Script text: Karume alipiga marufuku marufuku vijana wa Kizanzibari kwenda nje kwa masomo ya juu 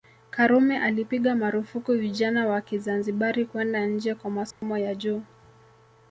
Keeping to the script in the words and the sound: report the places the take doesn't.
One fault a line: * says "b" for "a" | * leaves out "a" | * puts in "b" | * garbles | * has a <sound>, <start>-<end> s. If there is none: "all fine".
* leaves out "marufuku"
* has a dropout, 4.5-4.6 s